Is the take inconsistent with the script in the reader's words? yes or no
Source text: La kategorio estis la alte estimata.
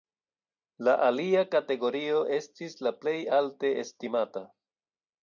yes